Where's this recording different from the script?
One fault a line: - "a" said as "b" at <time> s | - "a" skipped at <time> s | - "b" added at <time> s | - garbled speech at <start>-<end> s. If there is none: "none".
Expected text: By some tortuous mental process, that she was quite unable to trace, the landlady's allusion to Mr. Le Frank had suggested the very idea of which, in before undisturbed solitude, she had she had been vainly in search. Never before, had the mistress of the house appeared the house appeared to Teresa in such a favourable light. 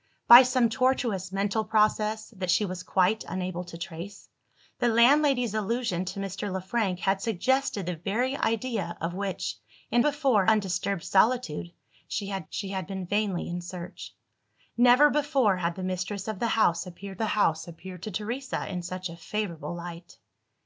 none